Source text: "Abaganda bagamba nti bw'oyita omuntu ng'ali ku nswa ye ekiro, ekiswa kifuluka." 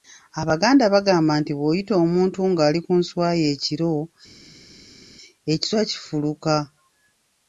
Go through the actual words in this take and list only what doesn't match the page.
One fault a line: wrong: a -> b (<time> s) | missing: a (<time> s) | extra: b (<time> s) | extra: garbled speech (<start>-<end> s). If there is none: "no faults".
no faults